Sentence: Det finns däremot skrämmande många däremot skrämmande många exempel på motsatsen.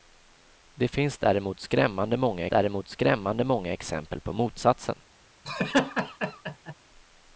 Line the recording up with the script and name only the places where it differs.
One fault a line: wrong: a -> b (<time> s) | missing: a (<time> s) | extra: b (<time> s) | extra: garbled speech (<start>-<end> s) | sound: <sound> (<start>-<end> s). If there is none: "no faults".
sound: laugh (5.4-6.7 s)